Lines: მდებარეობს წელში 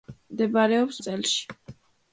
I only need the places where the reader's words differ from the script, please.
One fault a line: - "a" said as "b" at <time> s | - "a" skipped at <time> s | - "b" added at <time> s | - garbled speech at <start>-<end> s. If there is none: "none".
none